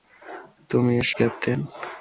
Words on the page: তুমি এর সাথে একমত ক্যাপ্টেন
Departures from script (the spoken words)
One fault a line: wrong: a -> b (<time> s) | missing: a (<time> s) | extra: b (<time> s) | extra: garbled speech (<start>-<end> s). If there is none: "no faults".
missing: সাথে একমত (1.1 s)